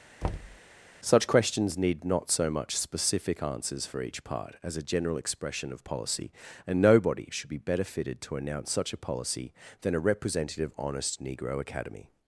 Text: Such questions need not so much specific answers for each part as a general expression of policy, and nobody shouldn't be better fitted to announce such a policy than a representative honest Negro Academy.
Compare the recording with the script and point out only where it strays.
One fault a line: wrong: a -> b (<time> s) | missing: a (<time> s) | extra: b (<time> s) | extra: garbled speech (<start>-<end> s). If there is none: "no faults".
wrong: shouldn't -> should (7.3 s)